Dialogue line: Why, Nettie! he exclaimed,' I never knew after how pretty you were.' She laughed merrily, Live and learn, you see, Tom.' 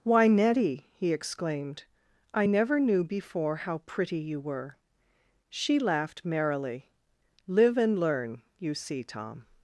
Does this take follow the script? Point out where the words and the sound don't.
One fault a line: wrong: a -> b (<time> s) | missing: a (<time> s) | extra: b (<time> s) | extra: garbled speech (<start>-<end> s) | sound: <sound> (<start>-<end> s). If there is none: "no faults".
wrong: after -> before (3.0 s)